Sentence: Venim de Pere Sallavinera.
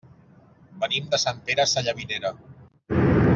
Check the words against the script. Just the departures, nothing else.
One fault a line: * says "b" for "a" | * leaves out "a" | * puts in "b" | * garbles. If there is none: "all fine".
* puts in "Sant"